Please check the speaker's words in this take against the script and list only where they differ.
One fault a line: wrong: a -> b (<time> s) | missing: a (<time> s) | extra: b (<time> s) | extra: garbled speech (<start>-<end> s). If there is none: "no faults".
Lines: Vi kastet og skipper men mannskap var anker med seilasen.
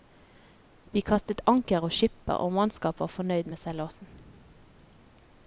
extra: anker (1.5 s)
wrong: men -> og (2.4 s)
wrong: anker -> fornøyd (3.2 s)